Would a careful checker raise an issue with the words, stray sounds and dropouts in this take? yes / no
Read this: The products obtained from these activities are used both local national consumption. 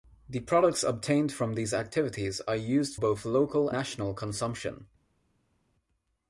no